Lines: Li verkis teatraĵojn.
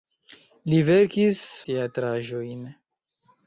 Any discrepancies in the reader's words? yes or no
no